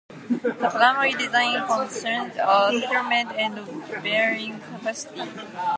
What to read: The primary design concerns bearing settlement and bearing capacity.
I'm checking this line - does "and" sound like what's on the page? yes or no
yes